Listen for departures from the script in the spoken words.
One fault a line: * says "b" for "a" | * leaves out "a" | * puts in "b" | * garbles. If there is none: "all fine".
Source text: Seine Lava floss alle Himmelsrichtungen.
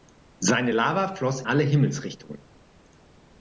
all fine